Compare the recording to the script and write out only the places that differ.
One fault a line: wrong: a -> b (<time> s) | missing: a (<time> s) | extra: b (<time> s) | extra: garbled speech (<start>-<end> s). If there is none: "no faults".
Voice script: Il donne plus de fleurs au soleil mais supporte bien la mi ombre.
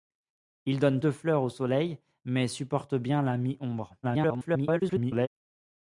missing: plus (1.0 s)
extra: garbled speech (4.0-5.3 s)